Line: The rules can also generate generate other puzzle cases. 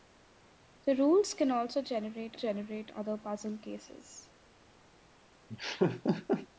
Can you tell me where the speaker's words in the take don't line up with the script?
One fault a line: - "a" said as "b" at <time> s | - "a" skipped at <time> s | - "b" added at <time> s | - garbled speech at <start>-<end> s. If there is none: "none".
none